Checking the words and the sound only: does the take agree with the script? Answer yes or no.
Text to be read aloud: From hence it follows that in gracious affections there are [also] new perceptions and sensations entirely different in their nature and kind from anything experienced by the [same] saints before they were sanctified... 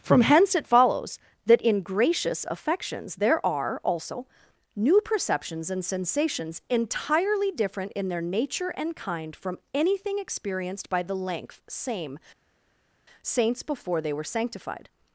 no